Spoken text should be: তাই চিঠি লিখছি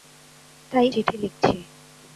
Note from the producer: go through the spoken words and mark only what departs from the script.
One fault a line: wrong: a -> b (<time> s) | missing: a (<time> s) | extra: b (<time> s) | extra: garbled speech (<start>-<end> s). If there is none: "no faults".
no faults